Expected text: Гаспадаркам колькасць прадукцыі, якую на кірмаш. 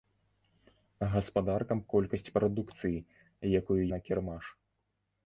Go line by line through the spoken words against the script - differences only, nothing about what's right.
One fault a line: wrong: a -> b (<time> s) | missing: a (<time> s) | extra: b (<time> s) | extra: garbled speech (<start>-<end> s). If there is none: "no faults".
no faults